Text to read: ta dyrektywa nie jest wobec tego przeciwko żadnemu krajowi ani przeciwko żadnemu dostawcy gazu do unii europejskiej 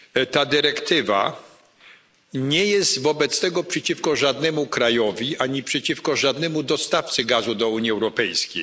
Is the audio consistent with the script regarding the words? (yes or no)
yes